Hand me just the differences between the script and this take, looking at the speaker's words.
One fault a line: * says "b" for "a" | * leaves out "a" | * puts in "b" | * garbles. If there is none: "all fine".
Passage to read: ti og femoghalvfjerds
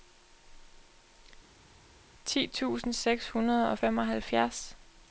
* puts in "tusind seks hundrede"